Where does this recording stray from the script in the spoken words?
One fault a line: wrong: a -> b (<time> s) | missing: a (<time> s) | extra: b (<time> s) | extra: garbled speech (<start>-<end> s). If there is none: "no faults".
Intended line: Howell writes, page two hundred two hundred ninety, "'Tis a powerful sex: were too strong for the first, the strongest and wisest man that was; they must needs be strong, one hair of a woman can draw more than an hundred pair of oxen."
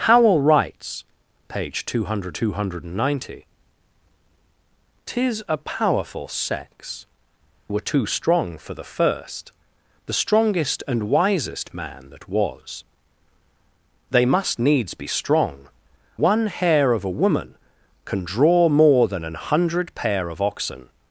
no faults